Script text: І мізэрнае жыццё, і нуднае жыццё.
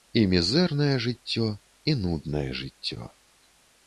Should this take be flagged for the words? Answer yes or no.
no